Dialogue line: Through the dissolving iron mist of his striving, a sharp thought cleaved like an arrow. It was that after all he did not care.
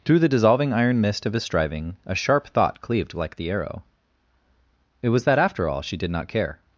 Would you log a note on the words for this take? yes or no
yes